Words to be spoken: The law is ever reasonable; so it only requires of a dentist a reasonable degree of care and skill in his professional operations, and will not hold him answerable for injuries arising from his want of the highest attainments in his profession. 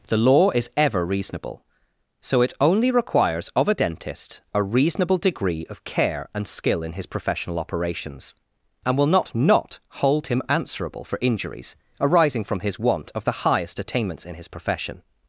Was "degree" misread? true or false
false